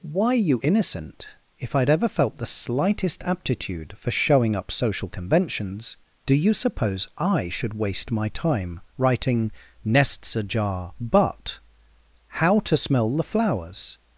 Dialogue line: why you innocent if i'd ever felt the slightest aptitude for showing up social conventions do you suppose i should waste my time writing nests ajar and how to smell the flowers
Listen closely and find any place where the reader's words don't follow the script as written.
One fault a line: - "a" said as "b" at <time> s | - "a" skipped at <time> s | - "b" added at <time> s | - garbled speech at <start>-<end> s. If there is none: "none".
- "and" said as "but" at 11.0 s